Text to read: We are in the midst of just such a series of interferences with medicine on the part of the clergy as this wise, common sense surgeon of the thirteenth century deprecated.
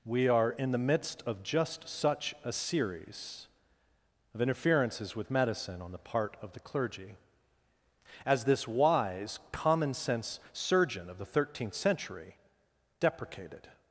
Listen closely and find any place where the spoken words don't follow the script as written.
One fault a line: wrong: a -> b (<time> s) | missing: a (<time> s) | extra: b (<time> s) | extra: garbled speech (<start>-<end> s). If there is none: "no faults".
no faults